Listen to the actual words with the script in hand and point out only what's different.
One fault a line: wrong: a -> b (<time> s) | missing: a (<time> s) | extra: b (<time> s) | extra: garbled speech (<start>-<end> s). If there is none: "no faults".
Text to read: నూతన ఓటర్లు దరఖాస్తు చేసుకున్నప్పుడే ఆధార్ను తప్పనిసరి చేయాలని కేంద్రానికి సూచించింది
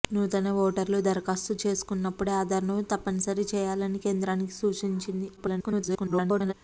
extra: garbled speech (5.4-6.5 s)